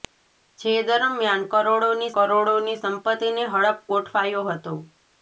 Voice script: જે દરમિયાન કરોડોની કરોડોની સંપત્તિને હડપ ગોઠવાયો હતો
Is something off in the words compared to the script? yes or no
no